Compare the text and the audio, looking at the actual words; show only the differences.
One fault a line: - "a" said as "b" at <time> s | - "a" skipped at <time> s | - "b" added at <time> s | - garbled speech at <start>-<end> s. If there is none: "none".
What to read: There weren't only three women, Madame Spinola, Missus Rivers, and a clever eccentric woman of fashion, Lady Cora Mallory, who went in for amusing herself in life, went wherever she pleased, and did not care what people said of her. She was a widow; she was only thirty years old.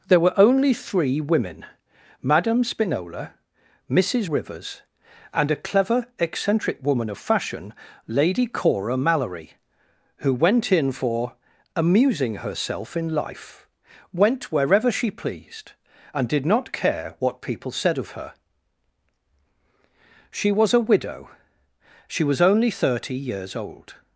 - "weren't" said as "were" at 0.2 s